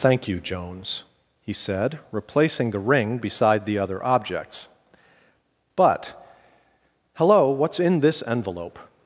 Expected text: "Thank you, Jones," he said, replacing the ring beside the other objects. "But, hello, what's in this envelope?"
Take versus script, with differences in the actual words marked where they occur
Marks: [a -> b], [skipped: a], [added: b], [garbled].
"Thank you, Jones," he said, replacing the ring beside the other objects. "But, hello, what's in this envelope?"